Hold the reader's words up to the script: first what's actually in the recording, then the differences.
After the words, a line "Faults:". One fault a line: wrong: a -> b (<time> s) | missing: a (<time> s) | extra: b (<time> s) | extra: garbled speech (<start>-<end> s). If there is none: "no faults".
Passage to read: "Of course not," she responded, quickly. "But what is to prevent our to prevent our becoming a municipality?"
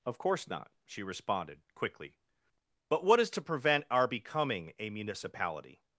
"Of course not," she responded, quickly. "But what is to prevent our becoming a municipality?"
Faults:
missing: to prevent our (4.1 s)